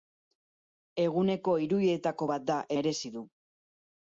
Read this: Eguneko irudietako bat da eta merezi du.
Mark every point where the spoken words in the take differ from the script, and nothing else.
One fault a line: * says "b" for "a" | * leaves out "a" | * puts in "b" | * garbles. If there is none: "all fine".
* leaves out "eta"